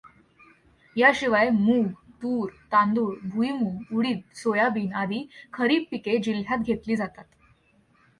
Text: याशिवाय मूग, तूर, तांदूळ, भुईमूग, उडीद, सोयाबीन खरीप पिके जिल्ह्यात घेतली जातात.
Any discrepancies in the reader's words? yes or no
yes